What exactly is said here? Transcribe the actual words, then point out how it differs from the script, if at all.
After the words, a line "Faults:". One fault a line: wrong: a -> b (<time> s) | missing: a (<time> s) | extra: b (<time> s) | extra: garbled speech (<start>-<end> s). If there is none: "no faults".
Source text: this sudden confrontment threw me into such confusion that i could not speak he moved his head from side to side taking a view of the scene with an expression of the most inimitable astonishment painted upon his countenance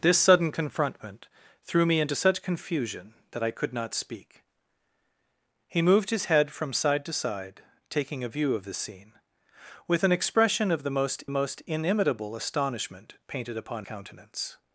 this sudden confrontment threw me into such confusion that i could not speak he moved his head from side to side taking a view of the scene with an expression of the most most inimitable astonishment painted upon countenance
Faults:
extra: most (11.3 s)
missing: his (13.8 s)